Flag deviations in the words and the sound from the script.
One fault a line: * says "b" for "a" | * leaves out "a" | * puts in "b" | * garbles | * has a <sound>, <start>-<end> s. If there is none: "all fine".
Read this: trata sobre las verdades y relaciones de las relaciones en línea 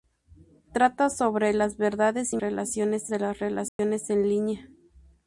* has a dropout, 3.7-3.8 s